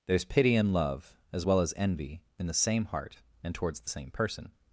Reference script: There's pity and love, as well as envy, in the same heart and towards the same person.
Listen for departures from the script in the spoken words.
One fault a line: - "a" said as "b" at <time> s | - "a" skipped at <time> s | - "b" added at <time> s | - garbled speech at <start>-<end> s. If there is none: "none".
none